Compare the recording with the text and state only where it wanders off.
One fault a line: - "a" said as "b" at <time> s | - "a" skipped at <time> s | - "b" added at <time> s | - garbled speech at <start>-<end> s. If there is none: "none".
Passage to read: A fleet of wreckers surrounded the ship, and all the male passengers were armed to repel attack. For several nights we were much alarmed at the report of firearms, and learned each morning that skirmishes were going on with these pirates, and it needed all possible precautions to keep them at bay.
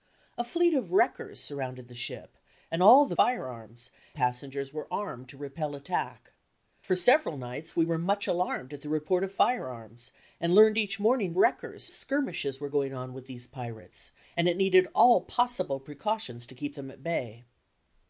- "male" said as "firearms" at 3.1 s
- "that" said as "wreckers" at 11.4 s